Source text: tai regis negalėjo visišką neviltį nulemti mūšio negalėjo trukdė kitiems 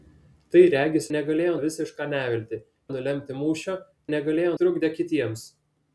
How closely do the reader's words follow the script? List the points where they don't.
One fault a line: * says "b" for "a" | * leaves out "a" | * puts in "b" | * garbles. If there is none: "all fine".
all fine